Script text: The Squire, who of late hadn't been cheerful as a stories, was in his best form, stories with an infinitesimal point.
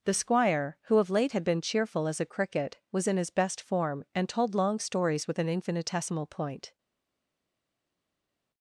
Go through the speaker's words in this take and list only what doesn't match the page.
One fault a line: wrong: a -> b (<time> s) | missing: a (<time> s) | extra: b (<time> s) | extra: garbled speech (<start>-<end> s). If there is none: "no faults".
wrong: hadn't -> had (1.3 s)
wrong: stories -> cricket (2.3 s)
extra: and told long (4.1 s)